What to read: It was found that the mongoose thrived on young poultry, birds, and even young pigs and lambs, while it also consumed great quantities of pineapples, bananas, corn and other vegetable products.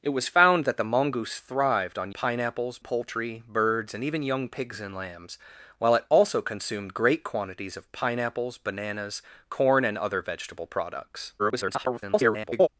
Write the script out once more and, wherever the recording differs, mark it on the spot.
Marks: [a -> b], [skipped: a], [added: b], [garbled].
It was found that the mongoose thrived on [young -> pineapples] poultry, birds, and even young pigs and lambs, while it also consumed great quantities of pineapples, bananas, corn and other vegetable products. [garbled]